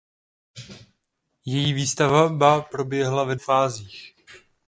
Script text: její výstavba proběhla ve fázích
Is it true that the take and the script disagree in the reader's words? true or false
false